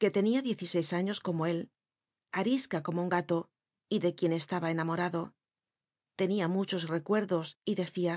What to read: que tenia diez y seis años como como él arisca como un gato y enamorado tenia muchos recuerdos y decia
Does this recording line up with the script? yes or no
no